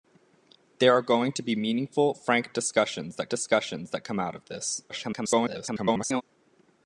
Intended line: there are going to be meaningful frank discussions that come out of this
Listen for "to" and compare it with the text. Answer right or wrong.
right